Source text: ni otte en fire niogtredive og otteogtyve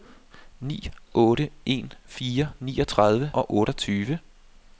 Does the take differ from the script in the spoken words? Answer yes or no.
no